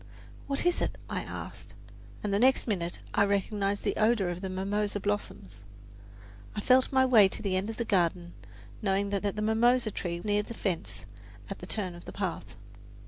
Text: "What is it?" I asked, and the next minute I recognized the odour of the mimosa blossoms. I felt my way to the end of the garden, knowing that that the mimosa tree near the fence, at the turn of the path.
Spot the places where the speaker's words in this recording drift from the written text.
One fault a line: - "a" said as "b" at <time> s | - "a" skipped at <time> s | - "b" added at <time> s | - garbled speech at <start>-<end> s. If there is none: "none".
none